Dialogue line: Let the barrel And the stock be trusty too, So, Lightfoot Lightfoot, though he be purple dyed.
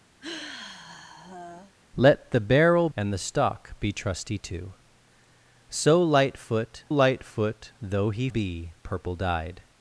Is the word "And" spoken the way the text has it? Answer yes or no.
yes